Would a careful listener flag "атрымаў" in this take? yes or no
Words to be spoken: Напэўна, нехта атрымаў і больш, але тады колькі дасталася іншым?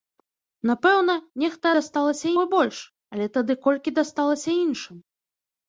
yes